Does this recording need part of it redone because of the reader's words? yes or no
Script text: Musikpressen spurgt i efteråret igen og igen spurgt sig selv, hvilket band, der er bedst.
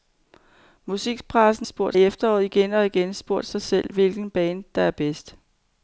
no